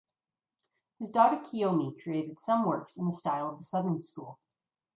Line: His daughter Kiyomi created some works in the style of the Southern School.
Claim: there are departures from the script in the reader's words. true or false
false